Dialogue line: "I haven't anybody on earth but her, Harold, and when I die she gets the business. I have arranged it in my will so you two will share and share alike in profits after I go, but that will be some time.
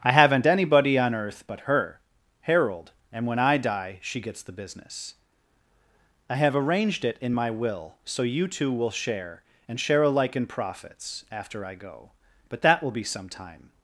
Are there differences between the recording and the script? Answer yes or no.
no